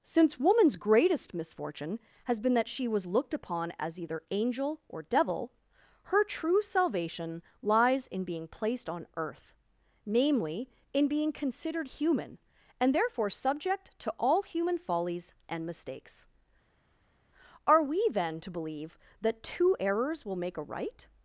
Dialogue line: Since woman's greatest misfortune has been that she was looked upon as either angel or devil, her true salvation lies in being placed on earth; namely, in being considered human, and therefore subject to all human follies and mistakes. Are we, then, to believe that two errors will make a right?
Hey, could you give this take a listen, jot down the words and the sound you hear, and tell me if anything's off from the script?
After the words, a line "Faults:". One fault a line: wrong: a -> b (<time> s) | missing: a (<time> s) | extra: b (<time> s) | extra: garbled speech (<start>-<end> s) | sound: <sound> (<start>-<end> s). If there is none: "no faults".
Since woman's greatest misfortune has been that she was looked upon as either angel or devil, her true salvation lies in being placed on earth; namely, in being considered human, and therefore subject to all human follies and mistakes. Are we, then, to believe that two errors will make a right?
Faults:
no faults